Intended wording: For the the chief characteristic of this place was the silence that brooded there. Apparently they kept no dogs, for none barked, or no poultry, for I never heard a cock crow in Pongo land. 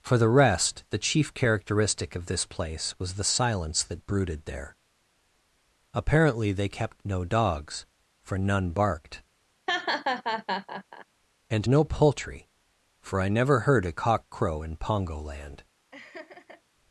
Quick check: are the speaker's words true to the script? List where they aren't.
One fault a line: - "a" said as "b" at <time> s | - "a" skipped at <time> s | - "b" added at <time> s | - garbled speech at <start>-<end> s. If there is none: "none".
- "rest" added at 0.3 s
- "or" said as "and" at 11.5 s